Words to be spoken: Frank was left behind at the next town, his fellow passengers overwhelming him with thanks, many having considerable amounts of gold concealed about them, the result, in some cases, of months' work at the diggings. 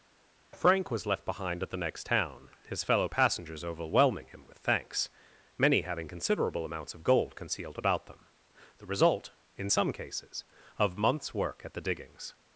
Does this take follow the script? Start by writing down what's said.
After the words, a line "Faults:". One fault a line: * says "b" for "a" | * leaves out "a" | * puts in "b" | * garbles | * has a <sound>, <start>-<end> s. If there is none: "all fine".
Frank was left behind at the next town, his fellow passengers overwhelming him with thanks, many having considerable amounts of gold concealed about them, the result, in some cases, of months' work at the diggings.
Faults:
all fine